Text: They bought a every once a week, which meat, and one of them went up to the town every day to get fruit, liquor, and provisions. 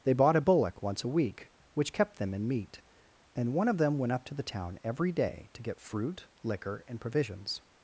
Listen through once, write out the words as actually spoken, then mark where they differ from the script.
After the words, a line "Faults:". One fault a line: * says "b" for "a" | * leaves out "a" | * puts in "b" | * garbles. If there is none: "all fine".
They bought a bullock once a week, which kept them in meat, and one of them went up to the town every day to get fruit, liquor, and provisions.
Faults:
* says "bullock" for "every"
* puts in "kept them in"